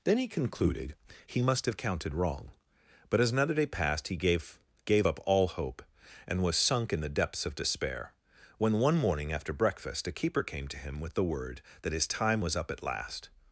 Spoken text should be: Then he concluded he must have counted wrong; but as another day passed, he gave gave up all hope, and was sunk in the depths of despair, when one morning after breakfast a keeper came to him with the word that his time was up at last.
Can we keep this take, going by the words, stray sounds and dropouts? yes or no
yes